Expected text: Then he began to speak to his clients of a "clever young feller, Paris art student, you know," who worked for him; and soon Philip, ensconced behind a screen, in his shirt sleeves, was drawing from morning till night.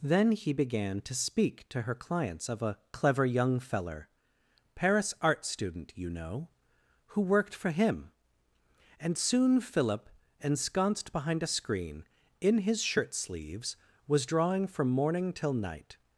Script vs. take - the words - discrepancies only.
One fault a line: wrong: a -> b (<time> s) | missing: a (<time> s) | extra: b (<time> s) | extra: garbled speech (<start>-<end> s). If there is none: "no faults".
wrong: his -> her (1.8 s)